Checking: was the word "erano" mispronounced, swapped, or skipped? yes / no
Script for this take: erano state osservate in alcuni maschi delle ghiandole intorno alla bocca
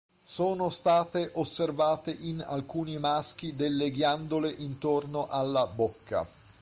yes